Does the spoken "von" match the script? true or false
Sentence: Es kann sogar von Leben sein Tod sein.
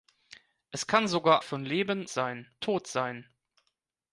true